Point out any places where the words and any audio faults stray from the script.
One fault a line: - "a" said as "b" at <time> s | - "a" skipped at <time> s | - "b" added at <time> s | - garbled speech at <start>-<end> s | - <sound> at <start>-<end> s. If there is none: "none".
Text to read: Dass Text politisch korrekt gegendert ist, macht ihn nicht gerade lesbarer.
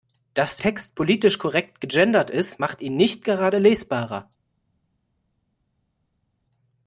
none